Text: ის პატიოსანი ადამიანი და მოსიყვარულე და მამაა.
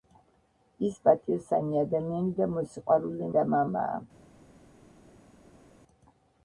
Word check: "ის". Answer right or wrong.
right